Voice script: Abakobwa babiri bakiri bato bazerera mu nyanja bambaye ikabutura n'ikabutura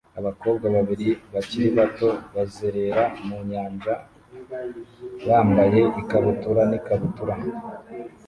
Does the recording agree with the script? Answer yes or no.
yes